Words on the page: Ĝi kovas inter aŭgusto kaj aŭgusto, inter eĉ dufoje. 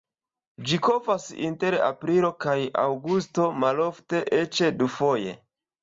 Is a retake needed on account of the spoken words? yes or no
yes